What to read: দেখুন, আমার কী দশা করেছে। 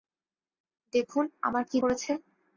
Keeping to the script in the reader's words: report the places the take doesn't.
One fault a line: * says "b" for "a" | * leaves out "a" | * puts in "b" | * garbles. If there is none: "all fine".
* leaves out "দশা"